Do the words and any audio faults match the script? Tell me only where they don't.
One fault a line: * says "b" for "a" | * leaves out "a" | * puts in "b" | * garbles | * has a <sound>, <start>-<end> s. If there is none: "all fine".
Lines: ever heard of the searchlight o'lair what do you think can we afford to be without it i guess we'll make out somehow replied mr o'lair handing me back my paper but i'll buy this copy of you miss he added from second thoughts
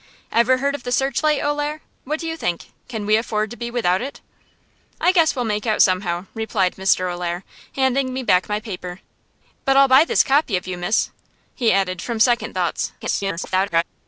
* garbles